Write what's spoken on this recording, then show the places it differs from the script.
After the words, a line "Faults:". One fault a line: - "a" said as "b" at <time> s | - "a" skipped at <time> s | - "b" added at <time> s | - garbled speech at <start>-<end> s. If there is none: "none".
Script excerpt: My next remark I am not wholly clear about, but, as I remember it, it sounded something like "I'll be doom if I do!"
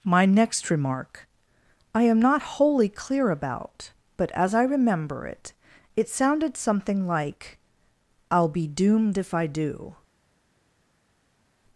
My next remark I am not wholly clear about, but, as I remember it, it sounded something like "I'll be doomed if I do!"
Faults:
- "doom" said as "doomed" at 8.7 s